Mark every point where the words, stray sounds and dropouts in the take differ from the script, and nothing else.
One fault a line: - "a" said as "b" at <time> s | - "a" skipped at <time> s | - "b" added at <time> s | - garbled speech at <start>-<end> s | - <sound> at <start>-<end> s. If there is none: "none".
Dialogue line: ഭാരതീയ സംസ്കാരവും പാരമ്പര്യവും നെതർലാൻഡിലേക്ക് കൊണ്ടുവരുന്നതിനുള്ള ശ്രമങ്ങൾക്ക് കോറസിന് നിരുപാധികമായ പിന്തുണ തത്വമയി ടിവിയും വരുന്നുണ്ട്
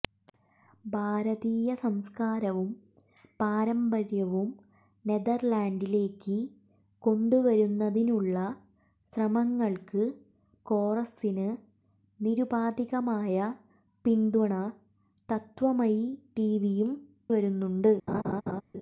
- laugh at 18.1-18.6 s